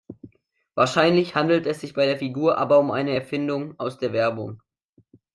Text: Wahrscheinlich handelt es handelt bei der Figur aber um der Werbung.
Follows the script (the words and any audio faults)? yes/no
no